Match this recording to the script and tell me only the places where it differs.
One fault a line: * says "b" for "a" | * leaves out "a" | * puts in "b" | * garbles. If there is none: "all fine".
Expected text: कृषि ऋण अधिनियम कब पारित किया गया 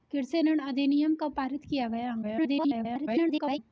* garbles